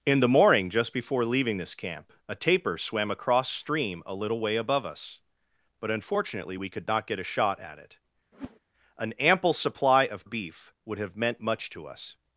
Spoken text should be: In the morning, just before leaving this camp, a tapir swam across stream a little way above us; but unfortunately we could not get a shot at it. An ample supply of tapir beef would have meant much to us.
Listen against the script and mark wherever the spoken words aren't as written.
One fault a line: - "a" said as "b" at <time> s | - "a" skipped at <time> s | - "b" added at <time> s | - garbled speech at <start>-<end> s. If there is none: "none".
- "tapir" skipped at 10.3 s